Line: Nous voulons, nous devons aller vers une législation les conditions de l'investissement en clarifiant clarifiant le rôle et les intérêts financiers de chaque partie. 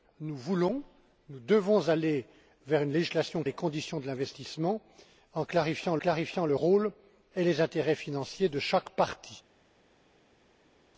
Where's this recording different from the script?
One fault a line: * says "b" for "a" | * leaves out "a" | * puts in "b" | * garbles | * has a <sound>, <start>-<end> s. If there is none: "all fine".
all fine